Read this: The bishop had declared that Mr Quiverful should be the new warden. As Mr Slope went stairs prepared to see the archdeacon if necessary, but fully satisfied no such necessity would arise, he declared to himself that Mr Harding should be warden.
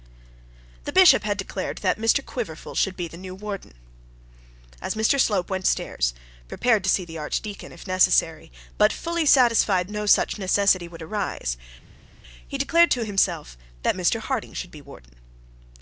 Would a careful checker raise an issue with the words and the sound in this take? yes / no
no